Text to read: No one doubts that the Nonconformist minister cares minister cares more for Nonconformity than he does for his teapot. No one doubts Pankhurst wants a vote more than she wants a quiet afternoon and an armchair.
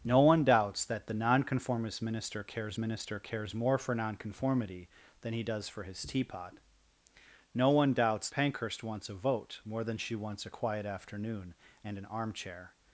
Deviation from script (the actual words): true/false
false